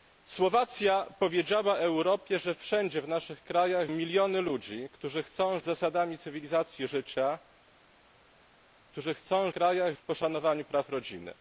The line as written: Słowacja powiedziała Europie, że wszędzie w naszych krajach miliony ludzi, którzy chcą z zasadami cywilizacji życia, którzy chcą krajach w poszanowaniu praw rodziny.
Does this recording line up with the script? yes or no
yes